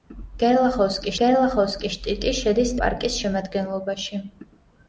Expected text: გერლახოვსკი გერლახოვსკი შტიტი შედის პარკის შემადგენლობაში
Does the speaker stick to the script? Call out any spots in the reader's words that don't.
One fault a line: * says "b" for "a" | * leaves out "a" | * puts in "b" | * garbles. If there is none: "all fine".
all fine